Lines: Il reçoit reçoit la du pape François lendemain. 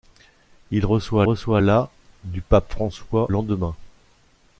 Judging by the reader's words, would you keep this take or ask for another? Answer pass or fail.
pass